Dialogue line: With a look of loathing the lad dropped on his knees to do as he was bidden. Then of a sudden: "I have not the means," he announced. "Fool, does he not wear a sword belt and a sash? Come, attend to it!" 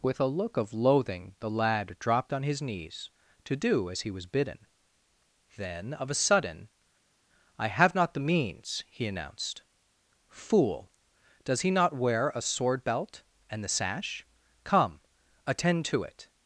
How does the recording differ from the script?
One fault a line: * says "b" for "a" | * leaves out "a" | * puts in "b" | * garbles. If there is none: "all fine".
* says "the" for "a"